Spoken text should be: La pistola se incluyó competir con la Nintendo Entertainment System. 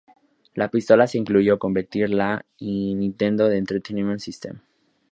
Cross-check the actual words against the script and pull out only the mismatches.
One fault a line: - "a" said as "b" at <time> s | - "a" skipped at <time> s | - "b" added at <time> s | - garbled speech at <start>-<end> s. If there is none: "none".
none